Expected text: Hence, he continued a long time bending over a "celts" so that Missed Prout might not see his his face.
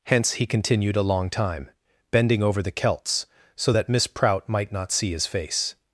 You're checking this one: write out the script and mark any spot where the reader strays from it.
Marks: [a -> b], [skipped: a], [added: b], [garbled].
Hence, he continued a long time bending over [a -> the] "celts" so that [Missed -> Miss] Prout might not see his [skipped: his] face.